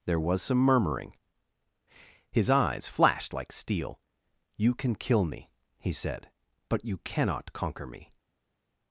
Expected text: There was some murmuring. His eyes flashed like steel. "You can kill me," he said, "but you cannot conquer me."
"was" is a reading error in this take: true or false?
false